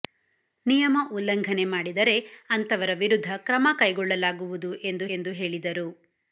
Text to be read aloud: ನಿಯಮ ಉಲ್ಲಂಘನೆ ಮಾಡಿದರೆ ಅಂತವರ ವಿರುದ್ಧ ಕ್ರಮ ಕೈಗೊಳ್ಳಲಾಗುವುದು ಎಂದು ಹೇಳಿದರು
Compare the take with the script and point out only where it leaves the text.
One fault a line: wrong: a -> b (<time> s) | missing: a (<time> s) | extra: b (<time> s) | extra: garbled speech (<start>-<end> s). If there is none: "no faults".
extra: ಎಂದು (5.2 s)